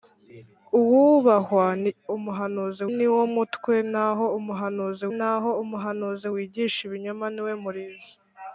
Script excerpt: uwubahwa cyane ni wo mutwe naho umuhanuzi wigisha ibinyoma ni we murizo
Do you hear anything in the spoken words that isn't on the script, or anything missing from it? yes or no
yes